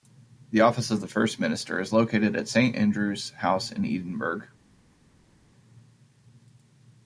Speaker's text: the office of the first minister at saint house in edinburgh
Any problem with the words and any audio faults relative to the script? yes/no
yes